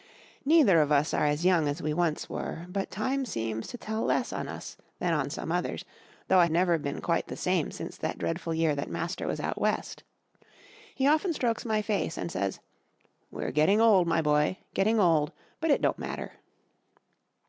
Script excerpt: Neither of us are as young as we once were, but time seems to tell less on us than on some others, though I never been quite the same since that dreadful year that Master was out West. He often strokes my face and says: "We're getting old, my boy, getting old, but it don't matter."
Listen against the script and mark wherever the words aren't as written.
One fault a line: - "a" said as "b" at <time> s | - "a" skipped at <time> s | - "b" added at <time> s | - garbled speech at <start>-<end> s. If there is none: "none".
none